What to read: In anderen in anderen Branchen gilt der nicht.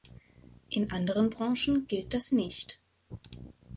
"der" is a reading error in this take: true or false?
true